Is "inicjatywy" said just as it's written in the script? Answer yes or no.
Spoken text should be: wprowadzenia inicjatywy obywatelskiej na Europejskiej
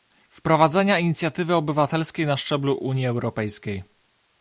yes